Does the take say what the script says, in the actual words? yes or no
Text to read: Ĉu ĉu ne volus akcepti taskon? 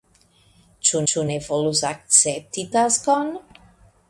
yes